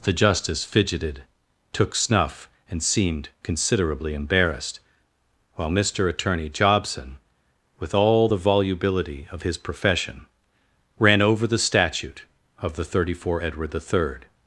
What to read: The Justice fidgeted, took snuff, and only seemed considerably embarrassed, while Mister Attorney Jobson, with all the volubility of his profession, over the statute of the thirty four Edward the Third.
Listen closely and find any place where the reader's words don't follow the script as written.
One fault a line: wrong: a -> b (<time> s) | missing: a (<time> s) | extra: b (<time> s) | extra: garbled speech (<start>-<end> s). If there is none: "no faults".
missing: only (2.8 s)
extra: ran (11.0 s)